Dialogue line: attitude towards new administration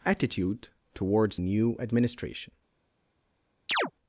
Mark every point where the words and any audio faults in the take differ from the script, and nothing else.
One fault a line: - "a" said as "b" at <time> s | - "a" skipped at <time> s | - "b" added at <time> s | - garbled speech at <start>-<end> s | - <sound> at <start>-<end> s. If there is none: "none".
- chirp at 3.7-3.9 s